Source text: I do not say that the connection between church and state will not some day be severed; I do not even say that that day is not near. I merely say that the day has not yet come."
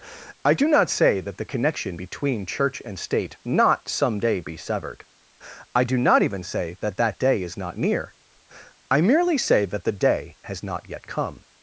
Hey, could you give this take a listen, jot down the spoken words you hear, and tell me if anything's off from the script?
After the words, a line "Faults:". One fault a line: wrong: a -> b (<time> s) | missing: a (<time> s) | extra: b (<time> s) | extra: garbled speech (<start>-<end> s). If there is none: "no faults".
I do not say that the connection between church and state not some day be severed; I do not even say that that day is not near. I merely say that the day has not yet come."
Faults:
missing: will (3.4 s)